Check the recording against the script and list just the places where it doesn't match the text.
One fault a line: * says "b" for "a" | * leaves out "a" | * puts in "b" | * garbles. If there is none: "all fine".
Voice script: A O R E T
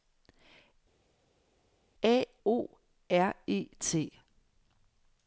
all fine